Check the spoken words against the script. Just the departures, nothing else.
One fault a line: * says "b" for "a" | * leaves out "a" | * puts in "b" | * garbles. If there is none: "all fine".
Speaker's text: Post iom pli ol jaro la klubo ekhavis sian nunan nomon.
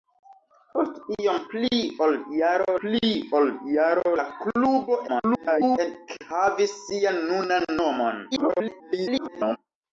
* puts in "pli ol jaro"
* garbles
* garbles